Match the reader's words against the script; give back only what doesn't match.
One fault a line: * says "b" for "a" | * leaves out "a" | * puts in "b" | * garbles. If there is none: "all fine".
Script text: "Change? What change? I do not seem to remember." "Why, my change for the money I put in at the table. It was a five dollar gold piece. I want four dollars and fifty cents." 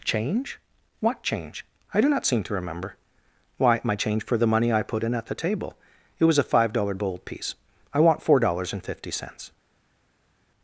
all fine